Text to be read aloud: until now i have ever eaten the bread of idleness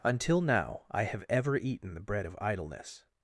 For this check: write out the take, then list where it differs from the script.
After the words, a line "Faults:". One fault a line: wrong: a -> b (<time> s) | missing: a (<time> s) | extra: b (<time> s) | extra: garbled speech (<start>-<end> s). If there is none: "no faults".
until now i have ever eaten the bread of idleness
Faults:
no faults